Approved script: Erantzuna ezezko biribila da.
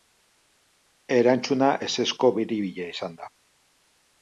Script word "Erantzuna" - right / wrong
right